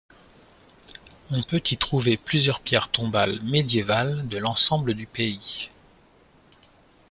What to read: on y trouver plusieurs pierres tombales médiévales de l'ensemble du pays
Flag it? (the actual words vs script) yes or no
yes